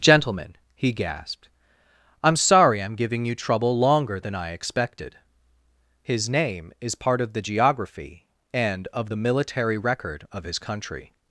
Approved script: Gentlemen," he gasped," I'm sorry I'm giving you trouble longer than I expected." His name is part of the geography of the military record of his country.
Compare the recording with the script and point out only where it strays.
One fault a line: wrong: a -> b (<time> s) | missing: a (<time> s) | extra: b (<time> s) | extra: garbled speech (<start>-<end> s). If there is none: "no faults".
extra: and (8.5 s)